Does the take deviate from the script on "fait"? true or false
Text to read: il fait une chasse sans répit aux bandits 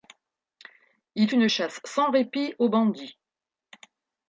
true